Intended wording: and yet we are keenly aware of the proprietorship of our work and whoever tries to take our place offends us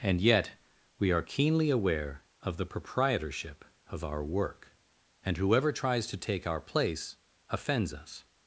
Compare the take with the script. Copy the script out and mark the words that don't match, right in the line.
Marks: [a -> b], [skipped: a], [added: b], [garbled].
and yet we are keenly aware of the proprietorship of our work and whoever tries to take our place offends us